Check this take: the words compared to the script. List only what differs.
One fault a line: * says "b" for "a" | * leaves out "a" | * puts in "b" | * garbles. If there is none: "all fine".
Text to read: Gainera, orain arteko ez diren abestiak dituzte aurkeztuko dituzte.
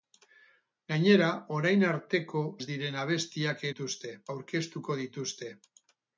all fine